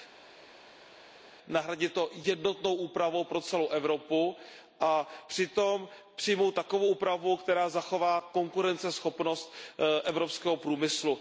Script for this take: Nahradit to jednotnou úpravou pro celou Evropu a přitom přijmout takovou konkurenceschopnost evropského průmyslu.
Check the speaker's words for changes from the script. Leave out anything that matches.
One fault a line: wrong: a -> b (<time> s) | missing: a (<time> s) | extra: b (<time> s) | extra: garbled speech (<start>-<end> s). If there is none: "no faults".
extra: úpravu která zachová (6.9 s)